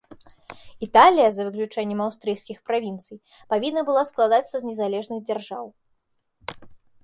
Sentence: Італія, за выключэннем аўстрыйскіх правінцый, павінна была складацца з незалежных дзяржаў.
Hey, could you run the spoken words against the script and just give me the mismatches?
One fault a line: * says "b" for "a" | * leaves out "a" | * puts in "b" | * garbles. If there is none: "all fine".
all fine